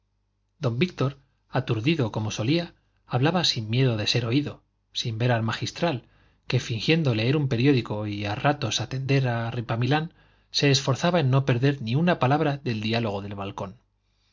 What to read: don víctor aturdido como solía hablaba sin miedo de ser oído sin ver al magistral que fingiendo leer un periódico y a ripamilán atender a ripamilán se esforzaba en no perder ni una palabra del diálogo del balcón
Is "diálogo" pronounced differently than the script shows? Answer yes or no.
no